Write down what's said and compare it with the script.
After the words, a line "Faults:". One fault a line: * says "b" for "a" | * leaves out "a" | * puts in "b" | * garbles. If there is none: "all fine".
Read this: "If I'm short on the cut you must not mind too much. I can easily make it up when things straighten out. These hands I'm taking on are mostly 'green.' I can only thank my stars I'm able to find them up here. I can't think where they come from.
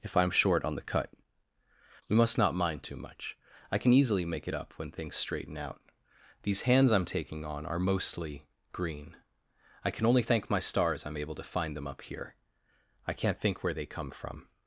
"If I'm short on the cut we must not mind too much. I can easily make it up when things straighten out. These hands I'm taking on are mostly 'green.' I can only thank my stars I'm able to find them up here. I can't think where they come from.
Faults:
* says "we" for "you"